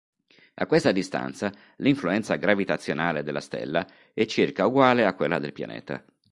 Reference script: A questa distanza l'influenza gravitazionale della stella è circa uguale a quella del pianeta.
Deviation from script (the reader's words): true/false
false